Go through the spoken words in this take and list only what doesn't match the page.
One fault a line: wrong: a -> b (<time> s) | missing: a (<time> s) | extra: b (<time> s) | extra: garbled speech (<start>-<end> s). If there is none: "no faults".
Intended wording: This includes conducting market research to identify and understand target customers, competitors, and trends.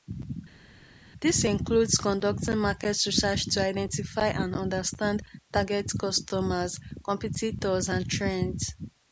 no faults